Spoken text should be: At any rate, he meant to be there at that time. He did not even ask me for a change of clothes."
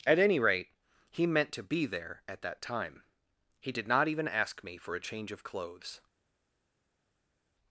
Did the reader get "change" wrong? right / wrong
right